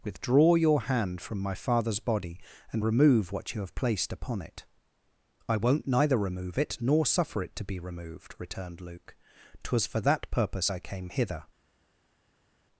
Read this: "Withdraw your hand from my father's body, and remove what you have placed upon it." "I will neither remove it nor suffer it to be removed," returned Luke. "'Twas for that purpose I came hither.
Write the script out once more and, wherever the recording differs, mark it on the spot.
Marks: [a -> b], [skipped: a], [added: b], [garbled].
"Withdraw your hand from my father's body, and remove what you have placed upon it." "I [will -> won't] neither remove it nor suffer it to be removed," returned Luke. "'Twas for that purpose I came hither.